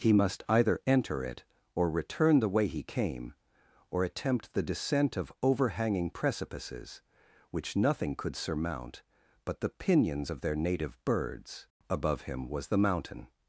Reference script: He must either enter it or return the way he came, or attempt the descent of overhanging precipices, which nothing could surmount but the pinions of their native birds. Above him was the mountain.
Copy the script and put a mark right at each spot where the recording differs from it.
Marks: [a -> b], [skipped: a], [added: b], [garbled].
He must either enter it or return the way he came, or attempt the descent of overhanging precipices, which nothing could surmount but the pinions of their native birds. Above him was the mountain.